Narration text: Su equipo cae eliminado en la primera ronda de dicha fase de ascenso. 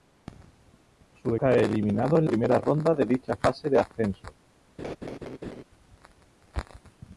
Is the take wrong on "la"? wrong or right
wrong